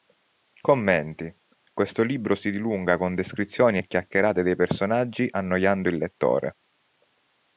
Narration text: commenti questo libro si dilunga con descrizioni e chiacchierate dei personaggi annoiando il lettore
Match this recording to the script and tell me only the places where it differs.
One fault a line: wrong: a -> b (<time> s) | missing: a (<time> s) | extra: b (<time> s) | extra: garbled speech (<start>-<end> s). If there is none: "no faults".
no faults